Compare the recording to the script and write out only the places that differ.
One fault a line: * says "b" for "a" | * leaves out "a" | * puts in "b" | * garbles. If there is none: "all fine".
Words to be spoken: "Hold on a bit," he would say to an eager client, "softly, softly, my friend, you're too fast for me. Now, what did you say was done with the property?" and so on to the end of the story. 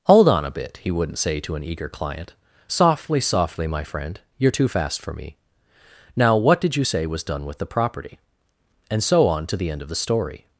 * says "wouldn't" for "would"